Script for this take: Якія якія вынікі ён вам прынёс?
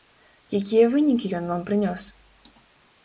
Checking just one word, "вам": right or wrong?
right